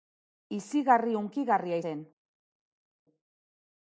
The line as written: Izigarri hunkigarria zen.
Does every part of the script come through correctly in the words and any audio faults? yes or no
yes